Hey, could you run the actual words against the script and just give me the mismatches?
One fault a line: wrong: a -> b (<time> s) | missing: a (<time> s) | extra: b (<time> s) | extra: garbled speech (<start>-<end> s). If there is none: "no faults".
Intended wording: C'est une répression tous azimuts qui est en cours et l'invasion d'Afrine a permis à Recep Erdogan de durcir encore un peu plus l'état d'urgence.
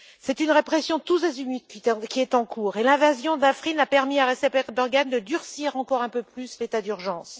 no faults